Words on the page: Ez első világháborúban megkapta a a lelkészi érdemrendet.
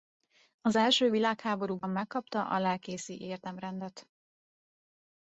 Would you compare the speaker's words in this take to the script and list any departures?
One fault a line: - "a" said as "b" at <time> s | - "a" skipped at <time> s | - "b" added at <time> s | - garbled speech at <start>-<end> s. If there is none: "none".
- "Ez" said as "Az" at 0.6 s
- "a" skipped at 2.6 s